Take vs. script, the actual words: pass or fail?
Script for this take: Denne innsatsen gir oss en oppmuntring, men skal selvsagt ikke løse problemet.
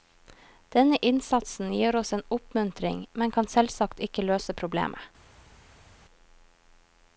fail